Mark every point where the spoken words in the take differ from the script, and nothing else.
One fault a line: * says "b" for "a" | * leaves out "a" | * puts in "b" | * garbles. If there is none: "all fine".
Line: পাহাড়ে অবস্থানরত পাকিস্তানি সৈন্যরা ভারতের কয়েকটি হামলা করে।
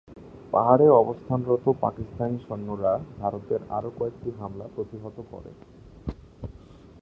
* puts in "আরও"
* puts in "প্রতিহত"